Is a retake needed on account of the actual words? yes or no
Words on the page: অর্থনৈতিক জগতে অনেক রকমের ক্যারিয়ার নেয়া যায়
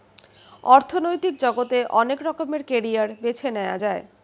yes